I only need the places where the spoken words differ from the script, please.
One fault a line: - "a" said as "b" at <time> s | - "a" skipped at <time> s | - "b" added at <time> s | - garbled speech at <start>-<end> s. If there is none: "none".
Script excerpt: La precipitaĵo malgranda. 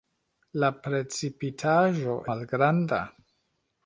none